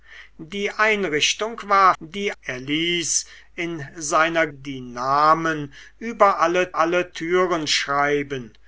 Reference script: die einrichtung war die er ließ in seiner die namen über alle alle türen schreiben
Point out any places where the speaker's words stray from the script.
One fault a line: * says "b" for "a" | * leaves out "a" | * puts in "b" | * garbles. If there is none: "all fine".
all fine